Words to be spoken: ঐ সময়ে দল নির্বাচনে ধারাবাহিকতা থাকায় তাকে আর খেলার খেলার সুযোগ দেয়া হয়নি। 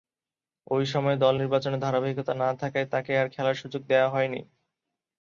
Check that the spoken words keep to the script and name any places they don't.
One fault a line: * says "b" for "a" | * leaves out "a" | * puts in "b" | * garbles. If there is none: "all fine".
* puts in "না"
* leaves out "খেলার"